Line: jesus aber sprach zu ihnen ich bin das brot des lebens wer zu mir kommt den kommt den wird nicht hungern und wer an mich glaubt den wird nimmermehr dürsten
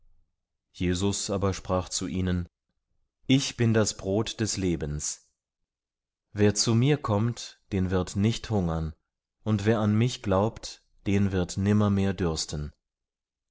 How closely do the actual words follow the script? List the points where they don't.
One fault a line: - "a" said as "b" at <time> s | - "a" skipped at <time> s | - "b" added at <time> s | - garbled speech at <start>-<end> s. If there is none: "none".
- "kommt den" skipped at 7.9 s